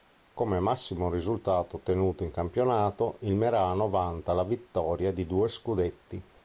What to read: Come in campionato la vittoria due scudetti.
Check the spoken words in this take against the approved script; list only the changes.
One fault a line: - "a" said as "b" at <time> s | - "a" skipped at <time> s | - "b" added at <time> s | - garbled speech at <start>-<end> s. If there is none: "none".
- "massimo risultato ottenuto" added at 0.6 s
- "il Merano vanta" added at 3.2 s
- "di" added at 5.1 s